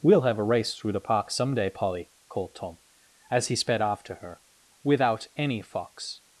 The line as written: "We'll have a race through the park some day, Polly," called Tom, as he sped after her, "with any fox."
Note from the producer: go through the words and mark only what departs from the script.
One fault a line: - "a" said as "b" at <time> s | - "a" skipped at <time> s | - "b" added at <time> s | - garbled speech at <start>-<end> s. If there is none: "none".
- "with" said as "without" at 4.8 s